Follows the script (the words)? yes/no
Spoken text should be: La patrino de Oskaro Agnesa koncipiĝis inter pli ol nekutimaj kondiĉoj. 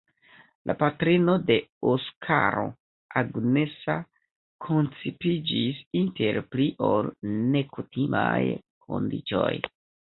yes